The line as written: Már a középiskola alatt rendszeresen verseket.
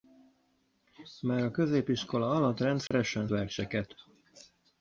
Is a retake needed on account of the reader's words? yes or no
no